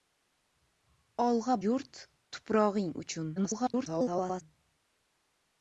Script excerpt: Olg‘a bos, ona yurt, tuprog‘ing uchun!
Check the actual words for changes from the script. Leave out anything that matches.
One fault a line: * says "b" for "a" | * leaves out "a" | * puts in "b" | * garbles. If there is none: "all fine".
* leaves out "bos ona"
* garbles